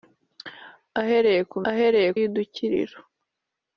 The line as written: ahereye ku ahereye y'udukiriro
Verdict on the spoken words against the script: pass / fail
pass